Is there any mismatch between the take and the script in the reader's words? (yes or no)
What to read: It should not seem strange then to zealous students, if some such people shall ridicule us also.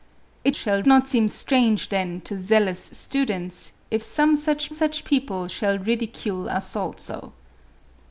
yes